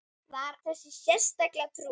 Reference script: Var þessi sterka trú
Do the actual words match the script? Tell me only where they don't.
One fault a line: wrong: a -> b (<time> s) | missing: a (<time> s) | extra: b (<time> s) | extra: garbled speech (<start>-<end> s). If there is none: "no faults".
no faults